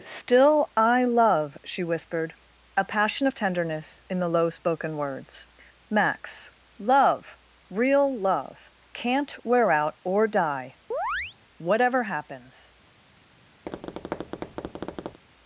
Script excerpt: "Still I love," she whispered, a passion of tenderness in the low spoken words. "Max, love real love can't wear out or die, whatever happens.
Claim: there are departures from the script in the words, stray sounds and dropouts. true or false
true